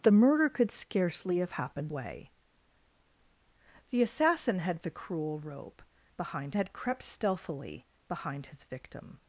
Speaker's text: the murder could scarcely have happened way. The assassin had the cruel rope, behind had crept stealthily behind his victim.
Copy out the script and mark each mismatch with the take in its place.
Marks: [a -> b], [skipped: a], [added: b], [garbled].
the murder could scarcely have happened way. The assassin had the cruel rope, behind had crept stealthily behind his victim.